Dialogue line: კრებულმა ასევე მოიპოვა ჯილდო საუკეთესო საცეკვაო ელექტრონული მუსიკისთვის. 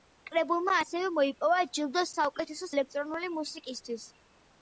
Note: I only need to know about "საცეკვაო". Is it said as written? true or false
false